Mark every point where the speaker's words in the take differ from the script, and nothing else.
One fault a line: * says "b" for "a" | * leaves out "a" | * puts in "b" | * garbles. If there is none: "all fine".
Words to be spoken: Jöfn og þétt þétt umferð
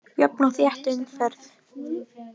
* leaves out "þétt"